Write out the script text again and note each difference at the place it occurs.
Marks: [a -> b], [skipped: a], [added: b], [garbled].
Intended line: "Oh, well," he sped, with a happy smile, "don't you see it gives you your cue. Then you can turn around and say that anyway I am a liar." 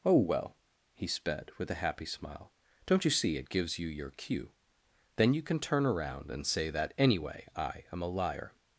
"Oh, well," he sped, with a happy smile, "don't you see it gives you your cue. Then you can turn around and say that anyway I am a liar."